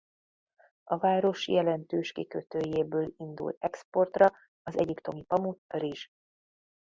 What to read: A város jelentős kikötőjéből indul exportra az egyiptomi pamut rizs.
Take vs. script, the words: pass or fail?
pass